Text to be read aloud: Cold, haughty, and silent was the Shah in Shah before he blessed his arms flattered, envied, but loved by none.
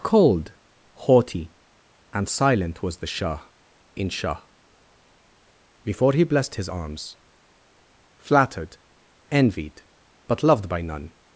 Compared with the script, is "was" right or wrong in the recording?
right